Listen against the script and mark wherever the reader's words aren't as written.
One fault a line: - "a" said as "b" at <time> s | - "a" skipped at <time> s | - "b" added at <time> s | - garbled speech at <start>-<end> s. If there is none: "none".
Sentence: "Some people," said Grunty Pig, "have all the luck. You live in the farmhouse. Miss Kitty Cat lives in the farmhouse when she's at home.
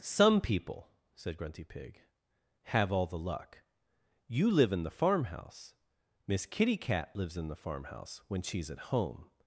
none